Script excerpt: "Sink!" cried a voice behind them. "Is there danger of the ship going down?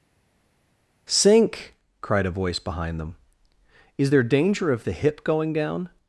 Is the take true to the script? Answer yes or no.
no